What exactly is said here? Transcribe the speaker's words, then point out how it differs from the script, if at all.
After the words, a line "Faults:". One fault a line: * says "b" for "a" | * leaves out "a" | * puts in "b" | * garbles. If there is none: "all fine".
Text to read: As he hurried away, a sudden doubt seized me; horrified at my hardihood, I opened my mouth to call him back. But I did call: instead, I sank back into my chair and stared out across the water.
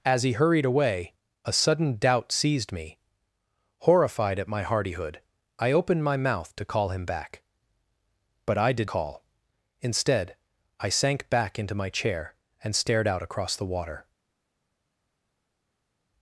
As he hurried away, a sudden doubt seized me; horrified at my hardihood, I opened my mouth to call him back. But I did call: instead, I sank back into my chair and stared out across the water.
Faults:
all fine